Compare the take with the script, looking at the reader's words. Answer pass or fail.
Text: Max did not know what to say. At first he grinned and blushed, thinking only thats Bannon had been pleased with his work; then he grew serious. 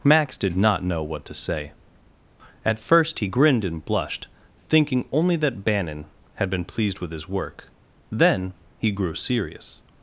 fail